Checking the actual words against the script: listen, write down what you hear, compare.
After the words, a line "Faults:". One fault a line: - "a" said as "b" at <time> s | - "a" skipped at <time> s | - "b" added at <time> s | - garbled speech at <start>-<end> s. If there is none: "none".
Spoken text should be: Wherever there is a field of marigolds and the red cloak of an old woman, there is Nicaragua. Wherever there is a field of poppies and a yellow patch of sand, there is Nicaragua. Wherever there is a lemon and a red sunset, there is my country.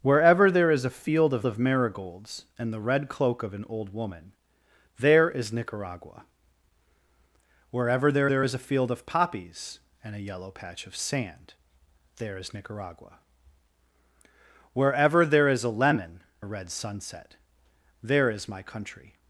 Wherever there is a field of of marigolds and the red cloak of an old woman, there is Nicaragua. Wherever there there is a field of poppies and a yellow patch of sand, there is Nicaragua. Wherever there is a lemon a red sunset, there is my country.
Faults:
- "of" added at 1.4 s
- "there" added at 8.3 s
- "and" skipped at 16.2 s